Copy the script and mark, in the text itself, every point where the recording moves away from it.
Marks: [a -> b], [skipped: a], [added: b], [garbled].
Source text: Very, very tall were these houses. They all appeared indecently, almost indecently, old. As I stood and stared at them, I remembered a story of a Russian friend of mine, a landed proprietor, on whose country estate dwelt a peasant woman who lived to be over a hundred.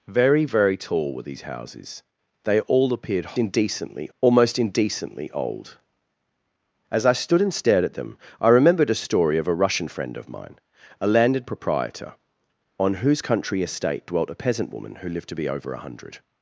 Very, very tall were these houses. They all appeared indecently, almost indecently, old. As I stood and stared at them, I remembered a story of a Russian friend of mine, a landed proprietor, on whose country estate dwelt a peasant woman who lived to be over a hundred.